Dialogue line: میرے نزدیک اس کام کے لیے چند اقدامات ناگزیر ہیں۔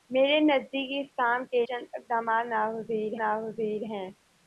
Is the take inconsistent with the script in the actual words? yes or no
yes